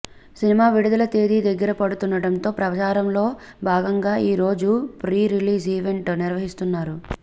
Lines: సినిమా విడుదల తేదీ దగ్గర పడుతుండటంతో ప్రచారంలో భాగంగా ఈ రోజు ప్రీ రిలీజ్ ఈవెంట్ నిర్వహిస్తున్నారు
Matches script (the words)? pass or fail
pass